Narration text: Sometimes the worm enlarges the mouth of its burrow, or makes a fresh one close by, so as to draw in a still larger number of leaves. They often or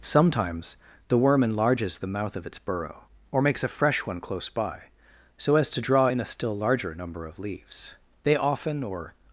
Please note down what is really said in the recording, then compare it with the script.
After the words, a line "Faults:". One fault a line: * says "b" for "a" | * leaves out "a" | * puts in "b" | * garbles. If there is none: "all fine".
Sometimes the worm enlarges the mouth of its burrow, or makes a fresh one close by, so as to draw in a still larger number of leaves. They often or
Faults:
all fine